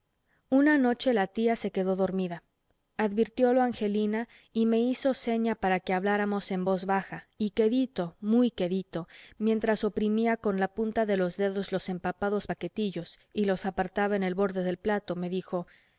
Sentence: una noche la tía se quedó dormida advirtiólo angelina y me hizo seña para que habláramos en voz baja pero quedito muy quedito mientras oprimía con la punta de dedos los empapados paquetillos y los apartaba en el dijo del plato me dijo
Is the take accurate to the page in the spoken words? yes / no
no